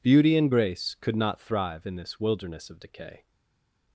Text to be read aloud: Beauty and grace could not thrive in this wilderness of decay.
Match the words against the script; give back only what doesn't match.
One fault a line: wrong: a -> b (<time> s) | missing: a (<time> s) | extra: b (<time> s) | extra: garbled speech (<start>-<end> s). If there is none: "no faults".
no faults